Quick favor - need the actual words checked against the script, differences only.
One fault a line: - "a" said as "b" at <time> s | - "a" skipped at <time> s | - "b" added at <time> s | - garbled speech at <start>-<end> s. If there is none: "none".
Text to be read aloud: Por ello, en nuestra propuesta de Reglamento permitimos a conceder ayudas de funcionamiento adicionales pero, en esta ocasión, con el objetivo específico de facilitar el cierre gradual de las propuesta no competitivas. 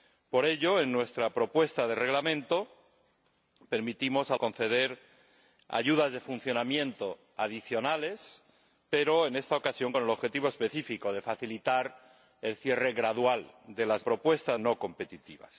none